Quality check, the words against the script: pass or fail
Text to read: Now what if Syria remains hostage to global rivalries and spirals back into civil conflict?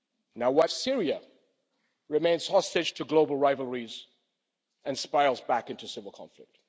fail